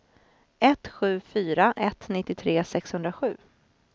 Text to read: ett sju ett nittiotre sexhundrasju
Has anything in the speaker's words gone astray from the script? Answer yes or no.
yes